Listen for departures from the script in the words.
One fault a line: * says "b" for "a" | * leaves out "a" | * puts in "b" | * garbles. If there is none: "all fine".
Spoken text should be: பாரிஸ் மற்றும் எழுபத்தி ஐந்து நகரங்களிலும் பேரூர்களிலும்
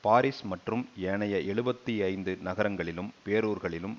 * puts in "ஏனைய"